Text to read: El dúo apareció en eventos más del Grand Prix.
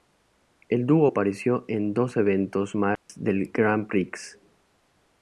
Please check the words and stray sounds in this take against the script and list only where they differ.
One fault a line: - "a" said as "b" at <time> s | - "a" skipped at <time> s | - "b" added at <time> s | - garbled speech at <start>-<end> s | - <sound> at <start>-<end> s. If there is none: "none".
- "dos" added at 1.9 s
- dropout at 3.0-3.1 s